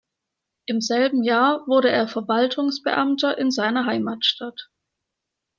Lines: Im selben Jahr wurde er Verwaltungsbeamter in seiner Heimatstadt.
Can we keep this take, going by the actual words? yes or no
yes